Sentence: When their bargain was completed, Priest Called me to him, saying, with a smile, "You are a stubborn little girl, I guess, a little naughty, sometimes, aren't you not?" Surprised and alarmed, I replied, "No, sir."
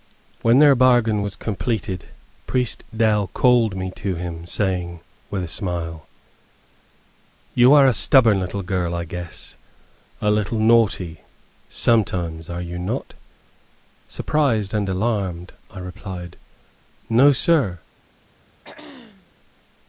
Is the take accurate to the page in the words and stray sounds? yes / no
no